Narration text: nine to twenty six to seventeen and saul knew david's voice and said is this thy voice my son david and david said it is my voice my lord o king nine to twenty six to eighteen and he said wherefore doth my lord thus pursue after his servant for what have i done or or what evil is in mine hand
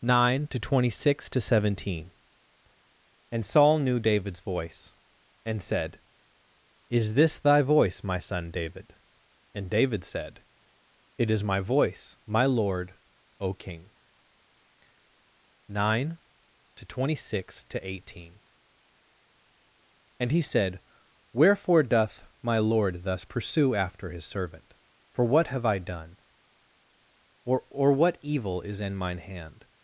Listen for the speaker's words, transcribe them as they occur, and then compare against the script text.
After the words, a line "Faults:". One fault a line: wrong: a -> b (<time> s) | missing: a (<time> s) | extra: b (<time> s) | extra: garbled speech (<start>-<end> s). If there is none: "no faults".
nine to twenty six to seventeen and saul knew david's voice and said is this thy voice my son david and david said it is my voice my lord o king nine to twenty six to eighteen and he said wherefore doth my lord thus pursue after his servant for what have i done or or what evil is in mine hand
Faults:
no faults